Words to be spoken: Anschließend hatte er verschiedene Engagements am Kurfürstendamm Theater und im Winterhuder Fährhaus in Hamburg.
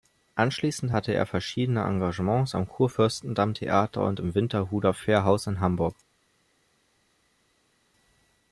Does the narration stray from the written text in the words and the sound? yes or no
no